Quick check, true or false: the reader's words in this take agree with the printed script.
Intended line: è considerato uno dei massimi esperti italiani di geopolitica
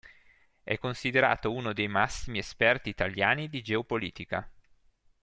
true